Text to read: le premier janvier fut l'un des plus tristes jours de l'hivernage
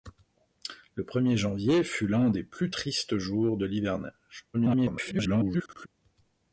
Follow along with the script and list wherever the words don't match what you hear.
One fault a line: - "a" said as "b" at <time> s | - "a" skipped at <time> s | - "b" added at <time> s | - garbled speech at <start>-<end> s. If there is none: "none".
- garbled speech at 4.5-5.9 s